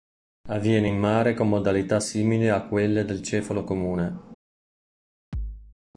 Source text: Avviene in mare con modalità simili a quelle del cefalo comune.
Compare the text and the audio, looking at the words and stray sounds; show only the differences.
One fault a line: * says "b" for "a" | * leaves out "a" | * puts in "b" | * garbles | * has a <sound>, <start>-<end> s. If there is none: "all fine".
* has a thud, 5.3-5.8 s